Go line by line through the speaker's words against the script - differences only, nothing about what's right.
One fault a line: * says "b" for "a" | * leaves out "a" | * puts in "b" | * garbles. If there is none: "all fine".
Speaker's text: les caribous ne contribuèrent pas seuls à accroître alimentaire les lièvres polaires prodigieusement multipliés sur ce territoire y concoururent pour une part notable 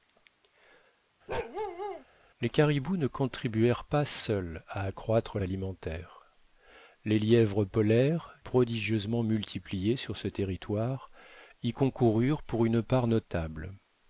all fine